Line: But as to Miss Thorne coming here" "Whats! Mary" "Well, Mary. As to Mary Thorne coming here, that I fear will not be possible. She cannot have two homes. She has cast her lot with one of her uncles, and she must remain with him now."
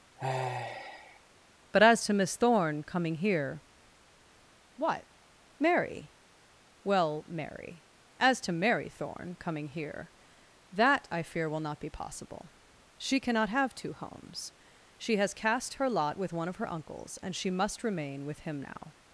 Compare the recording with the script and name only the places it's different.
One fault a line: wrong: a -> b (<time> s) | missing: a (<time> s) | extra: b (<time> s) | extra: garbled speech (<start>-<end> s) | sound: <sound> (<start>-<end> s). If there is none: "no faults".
sound: sigh (0.2-1.2 s)
wrong: Whats -> What (4.8 s)